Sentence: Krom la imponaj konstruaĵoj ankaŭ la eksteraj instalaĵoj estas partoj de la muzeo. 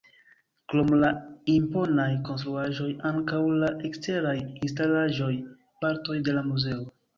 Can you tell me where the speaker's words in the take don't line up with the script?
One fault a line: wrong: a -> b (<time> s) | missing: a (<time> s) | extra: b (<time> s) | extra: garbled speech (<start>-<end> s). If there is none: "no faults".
missing: estas (5.3 s)